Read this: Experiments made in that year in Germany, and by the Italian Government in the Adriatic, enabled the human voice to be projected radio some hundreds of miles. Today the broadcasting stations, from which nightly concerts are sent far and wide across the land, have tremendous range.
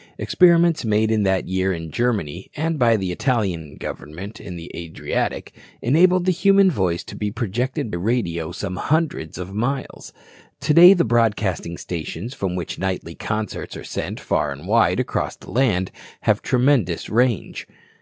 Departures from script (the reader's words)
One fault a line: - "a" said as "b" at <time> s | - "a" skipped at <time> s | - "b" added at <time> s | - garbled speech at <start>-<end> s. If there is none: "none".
none